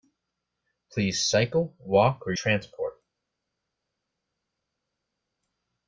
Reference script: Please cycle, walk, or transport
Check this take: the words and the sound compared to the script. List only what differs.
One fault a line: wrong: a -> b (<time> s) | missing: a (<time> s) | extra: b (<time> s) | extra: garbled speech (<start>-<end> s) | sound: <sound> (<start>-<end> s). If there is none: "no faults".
no faults